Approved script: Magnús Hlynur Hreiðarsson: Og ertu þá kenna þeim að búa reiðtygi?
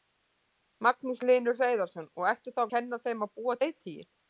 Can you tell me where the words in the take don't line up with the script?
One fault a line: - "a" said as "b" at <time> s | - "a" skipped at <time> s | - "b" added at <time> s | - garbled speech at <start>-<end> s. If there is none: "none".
none